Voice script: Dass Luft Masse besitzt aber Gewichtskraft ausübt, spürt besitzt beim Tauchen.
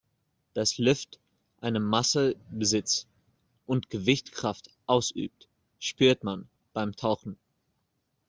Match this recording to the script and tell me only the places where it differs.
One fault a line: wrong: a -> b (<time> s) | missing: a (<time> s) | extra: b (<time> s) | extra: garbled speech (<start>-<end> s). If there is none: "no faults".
extra: eine (1.6 s)
wrong: aber -> und (3.7 s)
wrong: besitzt -> man (6.2 s)